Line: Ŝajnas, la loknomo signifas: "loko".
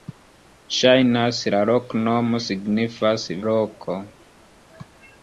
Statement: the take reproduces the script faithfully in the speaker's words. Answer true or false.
true